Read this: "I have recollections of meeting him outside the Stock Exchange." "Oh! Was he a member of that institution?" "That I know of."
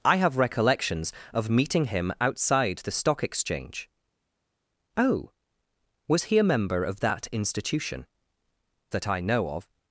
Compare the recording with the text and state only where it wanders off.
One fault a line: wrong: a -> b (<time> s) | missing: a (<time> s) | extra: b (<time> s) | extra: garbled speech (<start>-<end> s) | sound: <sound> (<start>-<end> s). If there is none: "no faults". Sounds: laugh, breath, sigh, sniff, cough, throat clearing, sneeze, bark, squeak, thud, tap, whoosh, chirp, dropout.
no faults